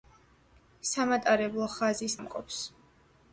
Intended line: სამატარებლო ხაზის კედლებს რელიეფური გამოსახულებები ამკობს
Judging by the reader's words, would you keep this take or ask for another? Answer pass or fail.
fail